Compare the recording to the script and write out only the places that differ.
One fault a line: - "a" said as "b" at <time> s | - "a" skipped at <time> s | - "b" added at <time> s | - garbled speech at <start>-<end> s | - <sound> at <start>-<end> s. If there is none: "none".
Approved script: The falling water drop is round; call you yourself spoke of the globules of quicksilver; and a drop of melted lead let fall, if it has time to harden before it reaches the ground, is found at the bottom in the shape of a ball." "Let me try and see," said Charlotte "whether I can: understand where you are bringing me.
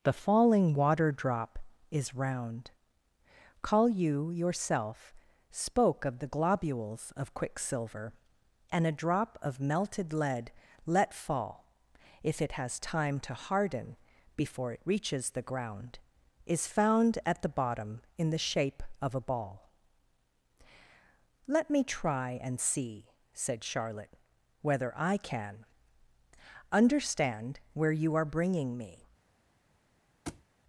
- thud at 30.3-30.4 s